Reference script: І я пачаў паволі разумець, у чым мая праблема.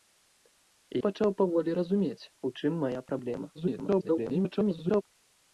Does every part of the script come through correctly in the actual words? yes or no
no